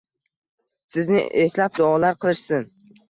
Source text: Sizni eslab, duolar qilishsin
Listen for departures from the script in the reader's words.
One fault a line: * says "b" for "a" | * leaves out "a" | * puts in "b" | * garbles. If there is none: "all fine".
all fine